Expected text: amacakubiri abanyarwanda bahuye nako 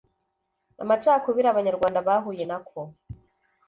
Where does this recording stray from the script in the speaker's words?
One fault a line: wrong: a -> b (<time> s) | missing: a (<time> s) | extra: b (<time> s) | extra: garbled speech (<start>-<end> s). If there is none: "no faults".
no faults